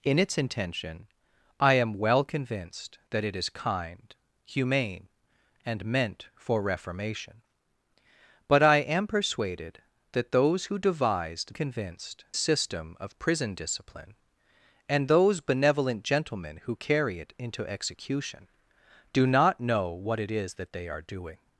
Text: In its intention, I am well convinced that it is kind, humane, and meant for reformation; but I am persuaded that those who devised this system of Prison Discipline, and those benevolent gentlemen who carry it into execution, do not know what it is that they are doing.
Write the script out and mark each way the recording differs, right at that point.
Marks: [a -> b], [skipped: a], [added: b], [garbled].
In its intention, I am well convinced that it is kind, humane, and meant for reformation; but I am persuaded that those who devised [this -> convinced] system of Prison Discipline, and those benevolent gentlemen who carry it into execution, do not know what it is that they are doing.